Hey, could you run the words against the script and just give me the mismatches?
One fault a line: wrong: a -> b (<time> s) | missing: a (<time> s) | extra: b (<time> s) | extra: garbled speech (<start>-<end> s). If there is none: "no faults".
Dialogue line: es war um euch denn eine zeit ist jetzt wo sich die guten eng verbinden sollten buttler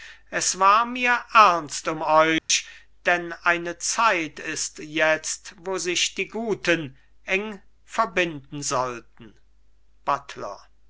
extra: mir ernst (0.9 s)